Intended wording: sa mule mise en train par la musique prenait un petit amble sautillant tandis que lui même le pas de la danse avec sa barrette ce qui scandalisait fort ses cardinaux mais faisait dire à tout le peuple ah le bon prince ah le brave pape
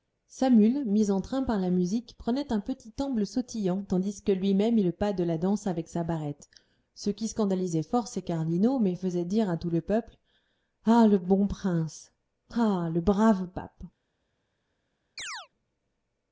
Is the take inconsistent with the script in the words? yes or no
no